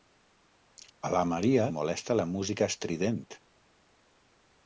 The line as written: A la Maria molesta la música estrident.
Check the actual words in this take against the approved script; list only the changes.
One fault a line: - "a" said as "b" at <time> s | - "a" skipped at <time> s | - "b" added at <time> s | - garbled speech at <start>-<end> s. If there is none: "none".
none